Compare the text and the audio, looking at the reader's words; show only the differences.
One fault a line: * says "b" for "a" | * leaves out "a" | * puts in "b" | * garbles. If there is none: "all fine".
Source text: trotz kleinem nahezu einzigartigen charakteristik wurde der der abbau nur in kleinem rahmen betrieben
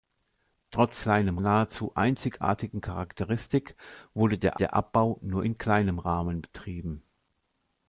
all fine